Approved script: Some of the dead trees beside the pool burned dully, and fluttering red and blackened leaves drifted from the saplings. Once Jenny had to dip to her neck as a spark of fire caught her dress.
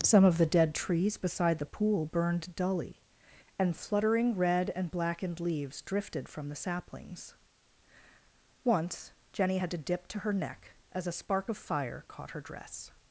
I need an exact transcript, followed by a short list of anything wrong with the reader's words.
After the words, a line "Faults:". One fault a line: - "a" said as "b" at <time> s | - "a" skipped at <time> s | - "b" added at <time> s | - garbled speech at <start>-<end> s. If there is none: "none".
Some of the dead trees beside the pool burned dully, and fluttering red and blackened leaves drifted from the saplings. Once Jenny had to dip to her neck as a spark of fire caught her dress.
Faults:
none